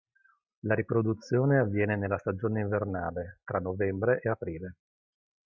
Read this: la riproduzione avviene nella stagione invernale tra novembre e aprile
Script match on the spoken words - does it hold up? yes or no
yes